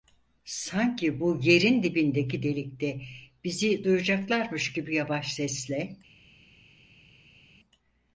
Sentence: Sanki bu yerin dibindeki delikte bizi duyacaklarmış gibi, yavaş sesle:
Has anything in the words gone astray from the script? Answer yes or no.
no